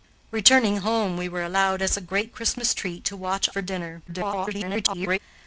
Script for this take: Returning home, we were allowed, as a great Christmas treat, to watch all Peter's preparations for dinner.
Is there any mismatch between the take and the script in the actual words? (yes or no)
yes